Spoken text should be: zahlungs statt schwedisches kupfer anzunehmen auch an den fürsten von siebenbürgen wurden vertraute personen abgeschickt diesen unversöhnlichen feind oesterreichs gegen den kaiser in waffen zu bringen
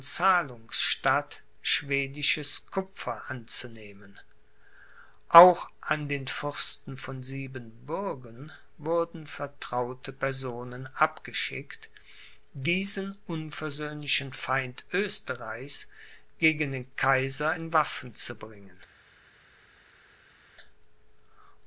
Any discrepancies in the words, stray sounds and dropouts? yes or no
no